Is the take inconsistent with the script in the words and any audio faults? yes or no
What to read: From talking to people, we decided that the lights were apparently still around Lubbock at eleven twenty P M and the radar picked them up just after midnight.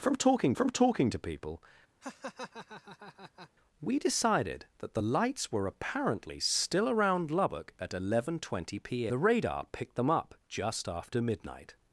yes